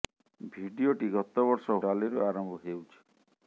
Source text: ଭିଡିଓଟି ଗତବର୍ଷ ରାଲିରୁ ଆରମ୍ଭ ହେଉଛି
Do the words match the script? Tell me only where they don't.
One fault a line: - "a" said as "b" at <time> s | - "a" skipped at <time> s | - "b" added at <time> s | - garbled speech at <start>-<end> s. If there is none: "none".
none